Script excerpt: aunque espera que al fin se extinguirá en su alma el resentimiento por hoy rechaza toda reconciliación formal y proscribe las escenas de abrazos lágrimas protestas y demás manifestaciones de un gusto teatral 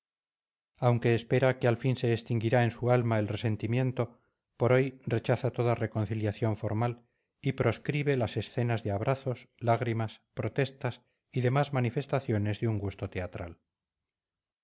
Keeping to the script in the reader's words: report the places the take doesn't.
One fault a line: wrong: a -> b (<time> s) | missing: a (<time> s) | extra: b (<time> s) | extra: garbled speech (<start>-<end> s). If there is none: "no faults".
no faults